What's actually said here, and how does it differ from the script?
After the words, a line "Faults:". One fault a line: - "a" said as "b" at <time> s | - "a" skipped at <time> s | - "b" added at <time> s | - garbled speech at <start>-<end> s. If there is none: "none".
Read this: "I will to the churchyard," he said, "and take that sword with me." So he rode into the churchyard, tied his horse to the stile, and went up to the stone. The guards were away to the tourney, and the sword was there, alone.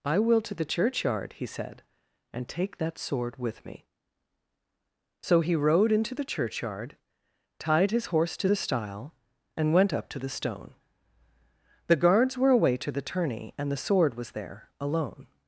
"I will to the churchyard," he said, "and take that sword with me." So he rode into the churchyard, tied his horse to the stile, and went up to the stone. The guards were away to the tourney, and the sword was there, alone.
Faults:
none